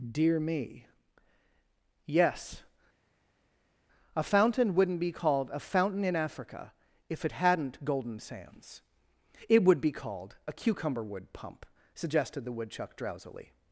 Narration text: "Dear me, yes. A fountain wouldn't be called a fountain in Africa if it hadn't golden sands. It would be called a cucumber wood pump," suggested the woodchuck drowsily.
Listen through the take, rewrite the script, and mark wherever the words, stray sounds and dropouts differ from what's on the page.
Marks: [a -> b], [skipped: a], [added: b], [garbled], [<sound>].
"Dear me, yes. A fountain wouldn't be called a fountain in Africa if it hadn't golden sands. It would be called a cucumber wood pump," suggested the woodchuck drowsily.